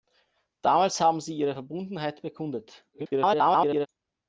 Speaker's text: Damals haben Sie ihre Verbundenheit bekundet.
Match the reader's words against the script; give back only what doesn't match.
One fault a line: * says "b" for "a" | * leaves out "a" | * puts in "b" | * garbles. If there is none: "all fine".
* garbles